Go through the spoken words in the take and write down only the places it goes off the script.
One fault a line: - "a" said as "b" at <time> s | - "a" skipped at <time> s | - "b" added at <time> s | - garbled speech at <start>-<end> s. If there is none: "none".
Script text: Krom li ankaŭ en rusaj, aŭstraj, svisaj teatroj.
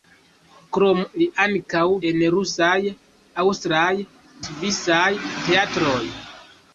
none